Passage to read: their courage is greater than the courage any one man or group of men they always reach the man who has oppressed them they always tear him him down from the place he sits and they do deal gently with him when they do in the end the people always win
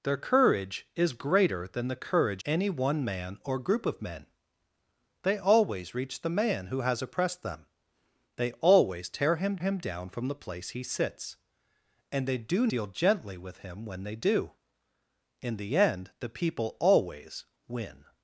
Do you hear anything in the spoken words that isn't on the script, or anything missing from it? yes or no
no